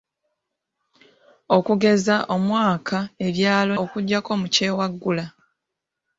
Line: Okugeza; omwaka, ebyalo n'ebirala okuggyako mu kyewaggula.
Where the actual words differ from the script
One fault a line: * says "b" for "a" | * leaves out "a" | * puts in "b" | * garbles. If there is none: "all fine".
* leaves out "n'ebirala"